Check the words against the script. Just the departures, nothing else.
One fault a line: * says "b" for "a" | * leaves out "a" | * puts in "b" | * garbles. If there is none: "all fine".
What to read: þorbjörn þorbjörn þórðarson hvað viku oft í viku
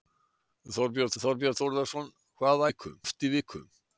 all fine